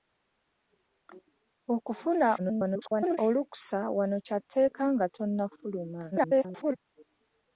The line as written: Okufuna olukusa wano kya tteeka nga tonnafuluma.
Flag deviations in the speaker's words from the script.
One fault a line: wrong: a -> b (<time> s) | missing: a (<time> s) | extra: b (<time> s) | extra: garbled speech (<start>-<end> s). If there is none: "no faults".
extra: garbled speech (2.4-3.2 s)
extra: garbled speech (6.1-6.8 s)